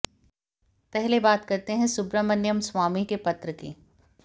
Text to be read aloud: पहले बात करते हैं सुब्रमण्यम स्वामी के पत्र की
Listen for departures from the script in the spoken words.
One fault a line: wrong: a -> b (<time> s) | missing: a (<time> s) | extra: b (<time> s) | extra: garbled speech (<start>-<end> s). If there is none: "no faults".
no faults